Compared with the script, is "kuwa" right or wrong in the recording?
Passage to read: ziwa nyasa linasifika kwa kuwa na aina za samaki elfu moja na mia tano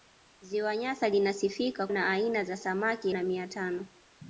wrong